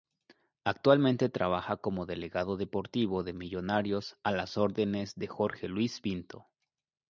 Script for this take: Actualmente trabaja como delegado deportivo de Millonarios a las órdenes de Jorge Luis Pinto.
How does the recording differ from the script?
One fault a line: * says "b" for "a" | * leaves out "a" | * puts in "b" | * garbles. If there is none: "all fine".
all fine